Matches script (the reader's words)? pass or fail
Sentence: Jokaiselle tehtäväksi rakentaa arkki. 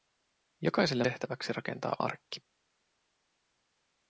pass